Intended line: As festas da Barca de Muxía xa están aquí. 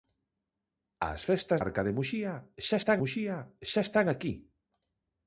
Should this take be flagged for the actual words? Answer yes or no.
yes